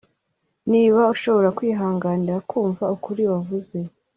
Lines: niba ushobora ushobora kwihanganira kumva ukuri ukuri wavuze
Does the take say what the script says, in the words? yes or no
no